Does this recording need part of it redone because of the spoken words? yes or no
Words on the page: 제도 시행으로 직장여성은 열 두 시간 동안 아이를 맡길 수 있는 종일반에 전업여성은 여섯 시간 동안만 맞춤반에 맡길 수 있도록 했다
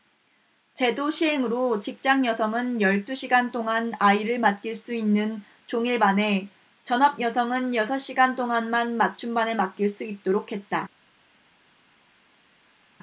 no